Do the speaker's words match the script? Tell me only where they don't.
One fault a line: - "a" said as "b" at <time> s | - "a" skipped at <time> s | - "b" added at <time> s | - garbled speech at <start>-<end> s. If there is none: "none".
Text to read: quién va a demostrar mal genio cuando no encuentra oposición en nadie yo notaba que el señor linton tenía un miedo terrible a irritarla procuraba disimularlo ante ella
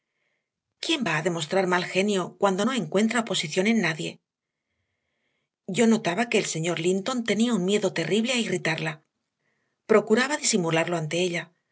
none